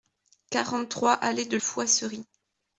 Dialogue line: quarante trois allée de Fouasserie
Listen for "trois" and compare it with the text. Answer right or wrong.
right